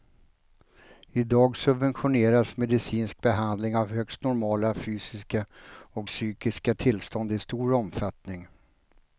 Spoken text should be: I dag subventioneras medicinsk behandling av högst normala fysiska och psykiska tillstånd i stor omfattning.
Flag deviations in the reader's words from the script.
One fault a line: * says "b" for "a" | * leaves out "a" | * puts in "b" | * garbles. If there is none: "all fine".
all fine